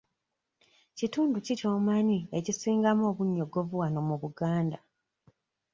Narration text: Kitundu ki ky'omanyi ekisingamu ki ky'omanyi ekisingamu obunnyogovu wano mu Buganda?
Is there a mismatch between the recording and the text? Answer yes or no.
yes